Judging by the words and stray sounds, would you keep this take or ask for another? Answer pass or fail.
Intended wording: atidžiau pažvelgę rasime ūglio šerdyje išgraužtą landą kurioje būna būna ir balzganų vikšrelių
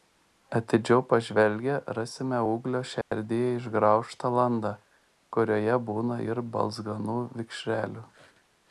fail